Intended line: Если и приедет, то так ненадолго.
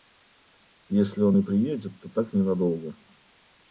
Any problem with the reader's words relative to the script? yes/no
yes